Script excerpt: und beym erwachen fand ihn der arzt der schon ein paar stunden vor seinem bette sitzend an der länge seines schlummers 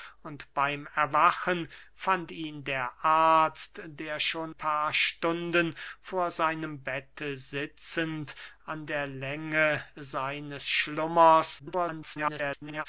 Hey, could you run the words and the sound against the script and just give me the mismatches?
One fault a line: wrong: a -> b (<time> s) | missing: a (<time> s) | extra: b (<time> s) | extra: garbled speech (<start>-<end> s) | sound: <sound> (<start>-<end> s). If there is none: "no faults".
missing: ein (4.5 s)
extra: garbled speech (11.6-12.9 s)